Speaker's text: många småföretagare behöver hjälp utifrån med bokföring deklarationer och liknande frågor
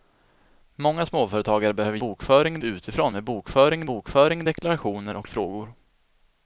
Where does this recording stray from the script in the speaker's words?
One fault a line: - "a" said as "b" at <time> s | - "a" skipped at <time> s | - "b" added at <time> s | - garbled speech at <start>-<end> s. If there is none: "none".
- "hjälp" said as "bokföring" at 2.0 s
- "bokföring" added at 3.8 s
- "liknande" skipped at 5.3 s